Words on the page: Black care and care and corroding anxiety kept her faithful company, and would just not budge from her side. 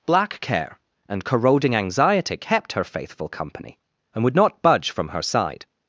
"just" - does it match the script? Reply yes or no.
no